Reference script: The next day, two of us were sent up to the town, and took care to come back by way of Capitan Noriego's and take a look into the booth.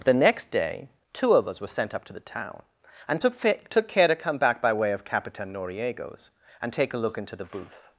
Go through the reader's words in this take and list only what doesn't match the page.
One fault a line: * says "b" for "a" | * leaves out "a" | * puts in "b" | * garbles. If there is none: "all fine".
* puts in "took"